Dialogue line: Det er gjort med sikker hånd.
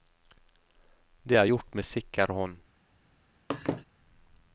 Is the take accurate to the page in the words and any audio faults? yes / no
no